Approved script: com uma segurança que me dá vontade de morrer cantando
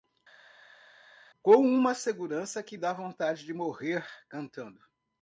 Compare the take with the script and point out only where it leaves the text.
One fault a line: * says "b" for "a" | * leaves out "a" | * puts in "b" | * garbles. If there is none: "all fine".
* leaves out "me"